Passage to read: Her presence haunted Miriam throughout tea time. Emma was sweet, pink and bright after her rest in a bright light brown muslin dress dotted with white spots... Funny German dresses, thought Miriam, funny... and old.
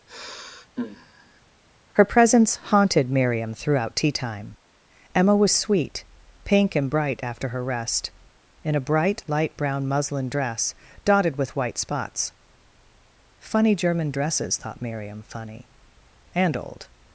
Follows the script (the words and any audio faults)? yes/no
no